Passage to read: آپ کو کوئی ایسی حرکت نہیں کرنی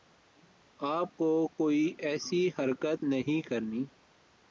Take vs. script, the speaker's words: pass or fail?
pass